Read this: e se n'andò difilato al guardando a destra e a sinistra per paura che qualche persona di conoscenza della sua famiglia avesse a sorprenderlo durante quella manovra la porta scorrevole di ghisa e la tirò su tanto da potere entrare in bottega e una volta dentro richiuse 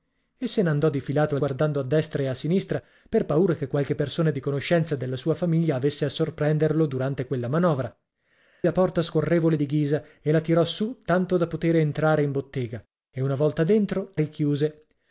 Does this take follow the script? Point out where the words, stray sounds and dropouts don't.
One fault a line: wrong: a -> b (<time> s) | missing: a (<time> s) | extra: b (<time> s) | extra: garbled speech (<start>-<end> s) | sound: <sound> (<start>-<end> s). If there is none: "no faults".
no faults